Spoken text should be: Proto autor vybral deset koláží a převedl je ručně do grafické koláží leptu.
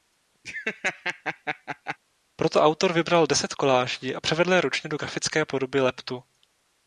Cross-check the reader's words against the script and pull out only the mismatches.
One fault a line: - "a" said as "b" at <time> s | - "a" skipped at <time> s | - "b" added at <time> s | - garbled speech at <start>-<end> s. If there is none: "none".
- "koláží" said as "podoby" at 5.4 s